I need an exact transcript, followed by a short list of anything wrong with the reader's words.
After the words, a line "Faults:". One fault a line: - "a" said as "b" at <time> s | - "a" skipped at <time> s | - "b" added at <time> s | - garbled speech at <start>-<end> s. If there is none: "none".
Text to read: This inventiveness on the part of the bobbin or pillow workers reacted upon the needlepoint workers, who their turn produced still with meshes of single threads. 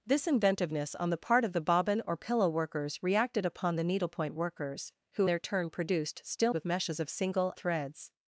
This inventiveness on the part of the bobbin or pillow workers reacted upon the needlepoint workers, who their turn produced still with meshes of single threads.
Faults:
none